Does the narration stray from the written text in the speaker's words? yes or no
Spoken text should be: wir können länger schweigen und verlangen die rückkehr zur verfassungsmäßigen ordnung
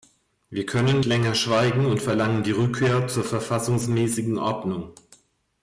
no